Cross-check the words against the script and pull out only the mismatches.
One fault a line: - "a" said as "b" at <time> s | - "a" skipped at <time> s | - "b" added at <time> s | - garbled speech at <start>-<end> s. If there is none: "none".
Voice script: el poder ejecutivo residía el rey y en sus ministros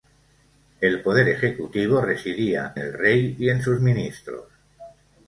none